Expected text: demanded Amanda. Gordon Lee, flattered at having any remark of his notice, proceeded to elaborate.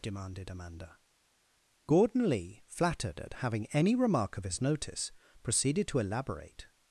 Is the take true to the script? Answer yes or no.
yes